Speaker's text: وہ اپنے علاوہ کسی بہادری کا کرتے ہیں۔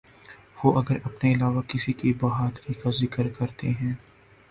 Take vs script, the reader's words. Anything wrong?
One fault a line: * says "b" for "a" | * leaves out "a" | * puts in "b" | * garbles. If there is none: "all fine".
* puts in "اگر"
* puts in "کی"
* puts in "ذکر"